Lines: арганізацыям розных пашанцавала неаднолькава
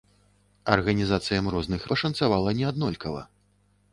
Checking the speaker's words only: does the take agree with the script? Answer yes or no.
yes